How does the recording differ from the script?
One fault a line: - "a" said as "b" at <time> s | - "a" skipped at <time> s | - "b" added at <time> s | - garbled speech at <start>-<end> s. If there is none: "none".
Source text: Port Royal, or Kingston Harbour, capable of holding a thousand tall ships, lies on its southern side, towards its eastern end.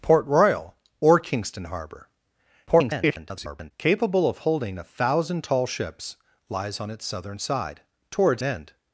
- garbled speech at 2.7-3.7 s
- "its eastern" skipped at 8.4 s